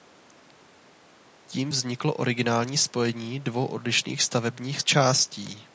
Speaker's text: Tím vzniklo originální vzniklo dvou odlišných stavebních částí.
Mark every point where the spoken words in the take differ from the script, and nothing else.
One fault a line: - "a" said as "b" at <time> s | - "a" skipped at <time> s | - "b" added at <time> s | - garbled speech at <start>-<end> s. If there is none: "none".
- "vzniklo" said as "spojení" at 2.8 s